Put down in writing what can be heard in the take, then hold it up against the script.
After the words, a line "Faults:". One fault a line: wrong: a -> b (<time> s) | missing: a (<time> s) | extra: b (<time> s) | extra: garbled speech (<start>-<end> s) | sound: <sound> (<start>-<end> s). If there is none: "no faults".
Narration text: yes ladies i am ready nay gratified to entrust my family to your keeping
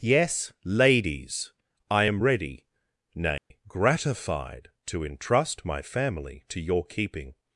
yes ladies i am ready nay gratified to entrust my family to your keeping
Faults:
sound: dropout (3.4-3.5 s)